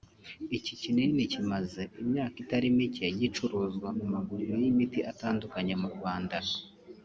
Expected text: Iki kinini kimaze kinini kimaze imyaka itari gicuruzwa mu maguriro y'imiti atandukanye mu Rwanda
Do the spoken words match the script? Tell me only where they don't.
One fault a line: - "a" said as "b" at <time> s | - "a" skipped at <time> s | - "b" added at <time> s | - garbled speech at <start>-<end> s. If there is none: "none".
- "kinini kimaze" skipped at 1.8 s
- "mike" added at 2.8 s